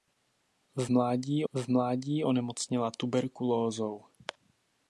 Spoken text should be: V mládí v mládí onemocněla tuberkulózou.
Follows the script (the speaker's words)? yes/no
yes